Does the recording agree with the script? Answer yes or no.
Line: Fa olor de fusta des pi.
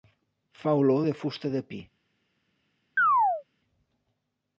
no